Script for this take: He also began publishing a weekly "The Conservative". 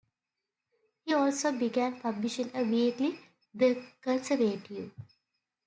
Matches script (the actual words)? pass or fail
pass